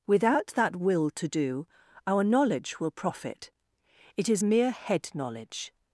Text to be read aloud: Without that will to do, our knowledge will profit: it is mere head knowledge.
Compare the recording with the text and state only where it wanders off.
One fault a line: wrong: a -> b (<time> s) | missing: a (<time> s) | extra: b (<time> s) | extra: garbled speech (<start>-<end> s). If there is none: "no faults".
no faults